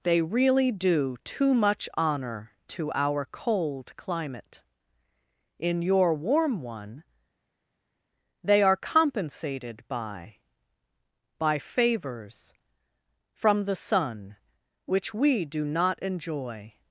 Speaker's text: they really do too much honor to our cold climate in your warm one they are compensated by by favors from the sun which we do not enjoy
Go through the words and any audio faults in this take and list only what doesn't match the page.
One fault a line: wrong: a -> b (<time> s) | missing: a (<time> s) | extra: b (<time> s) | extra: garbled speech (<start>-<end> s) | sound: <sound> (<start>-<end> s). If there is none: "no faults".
no faults